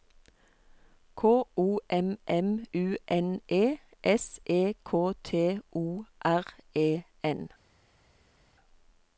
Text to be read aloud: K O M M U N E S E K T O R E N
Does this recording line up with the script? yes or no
yes